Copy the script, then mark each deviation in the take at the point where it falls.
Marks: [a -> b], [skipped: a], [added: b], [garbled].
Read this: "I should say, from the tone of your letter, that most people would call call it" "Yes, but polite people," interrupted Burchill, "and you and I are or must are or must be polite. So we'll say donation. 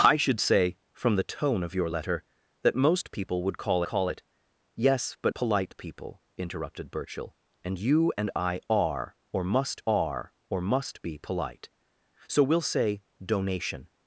"I should say, from the tone of your letter, that most people would call call it" "Yes, but polite people," interrupted Burchill, "and you and I are or must are or must be polite. So we'll say donation.